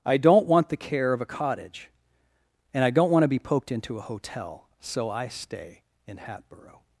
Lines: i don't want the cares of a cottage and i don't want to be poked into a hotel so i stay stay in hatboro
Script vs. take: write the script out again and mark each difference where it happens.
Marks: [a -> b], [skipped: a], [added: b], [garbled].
i don't want the [cares -> care] of a cottage and i don't want to be poked into a hotel so i stay [skipped: stay] in hatboro